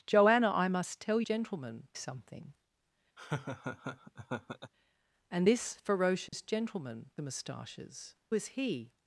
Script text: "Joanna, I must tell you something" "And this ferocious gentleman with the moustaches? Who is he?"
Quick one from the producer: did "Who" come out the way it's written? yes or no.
no